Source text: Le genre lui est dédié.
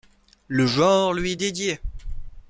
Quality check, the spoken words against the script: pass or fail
pass